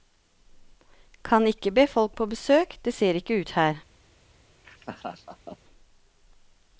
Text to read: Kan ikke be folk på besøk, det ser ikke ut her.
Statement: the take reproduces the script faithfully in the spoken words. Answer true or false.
true